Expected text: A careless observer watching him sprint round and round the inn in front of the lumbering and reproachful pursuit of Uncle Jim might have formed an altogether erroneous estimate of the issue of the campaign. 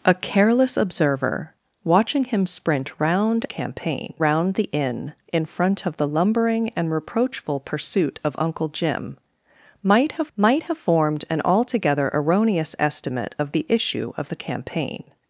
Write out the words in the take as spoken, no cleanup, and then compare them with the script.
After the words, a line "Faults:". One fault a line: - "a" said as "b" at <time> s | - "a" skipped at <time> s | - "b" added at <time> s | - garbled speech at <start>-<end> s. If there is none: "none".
A careless observer watching him sprint round campaign round the inn in front of the lumbering and reproachful pursuit of Uncle Jim might have might have formed an altogether erroneous estimate of the issue of the campaign.
Faults:
- "and" said as "campaign" at 3.4 s
- "might have" added at 10.4 s